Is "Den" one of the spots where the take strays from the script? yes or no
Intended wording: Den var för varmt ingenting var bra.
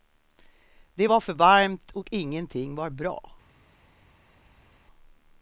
yes